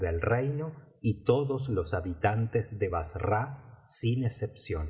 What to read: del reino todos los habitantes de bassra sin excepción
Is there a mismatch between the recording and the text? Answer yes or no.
yes